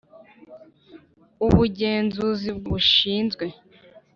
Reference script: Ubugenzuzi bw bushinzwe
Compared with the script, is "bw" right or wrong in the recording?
right